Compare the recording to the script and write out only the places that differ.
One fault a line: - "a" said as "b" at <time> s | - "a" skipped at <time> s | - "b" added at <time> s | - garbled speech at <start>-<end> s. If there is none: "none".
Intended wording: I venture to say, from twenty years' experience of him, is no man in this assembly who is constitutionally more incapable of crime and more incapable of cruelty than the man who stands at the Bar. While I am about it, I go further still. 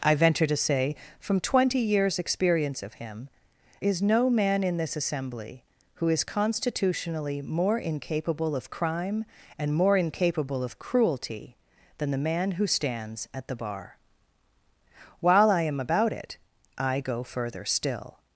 none